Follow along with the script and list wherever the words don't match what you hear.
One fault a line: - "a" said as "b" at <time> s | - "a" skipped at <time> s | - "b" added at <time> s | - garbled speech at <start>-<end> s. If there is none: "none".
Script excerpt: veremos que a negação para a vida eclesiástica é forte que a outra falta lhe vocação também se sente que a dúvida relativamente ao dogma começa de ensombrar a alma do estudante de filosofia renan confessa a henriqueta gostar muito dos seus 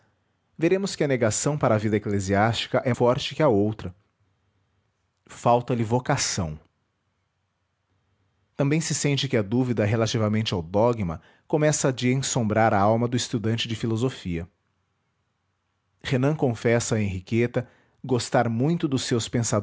none